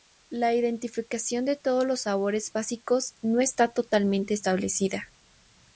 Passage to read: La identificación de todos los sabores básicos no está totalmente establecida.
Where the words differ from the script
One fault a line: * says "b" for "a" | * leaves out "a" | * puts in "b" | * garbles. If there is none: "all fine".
all fine